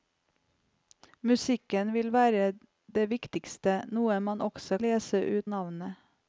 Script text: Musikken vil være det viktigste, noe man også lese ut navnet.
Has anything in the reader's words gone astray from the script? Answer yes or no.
no